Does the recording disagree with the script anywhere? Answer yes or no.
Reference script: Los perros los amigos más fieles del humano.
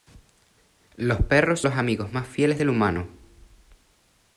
no